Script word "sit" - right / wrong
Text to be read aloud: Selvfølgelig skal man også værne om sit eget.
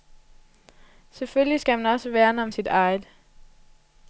right